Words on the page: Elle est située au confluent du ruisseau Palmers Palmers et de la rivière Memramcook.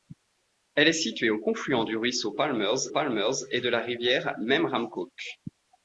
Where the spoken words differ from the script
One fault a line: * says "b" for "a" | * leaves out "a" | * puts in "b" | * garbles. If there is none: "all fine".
all fine